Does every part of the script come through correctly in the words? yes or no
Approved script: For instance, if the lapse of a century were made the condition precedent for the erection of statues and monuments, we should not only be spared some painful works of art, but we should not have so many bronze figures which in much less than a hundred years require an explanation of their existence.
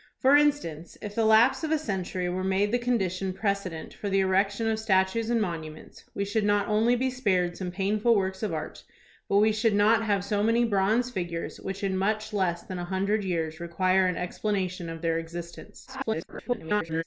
no